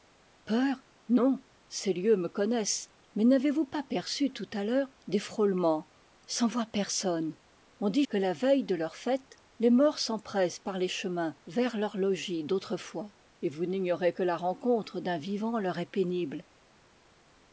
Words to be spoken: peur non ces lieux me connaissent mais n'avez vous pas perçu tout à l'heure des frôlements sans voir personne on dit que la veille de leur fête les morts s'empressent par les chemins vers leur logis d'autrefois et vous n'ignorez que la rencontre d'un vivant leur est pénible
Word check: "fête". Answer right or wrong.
right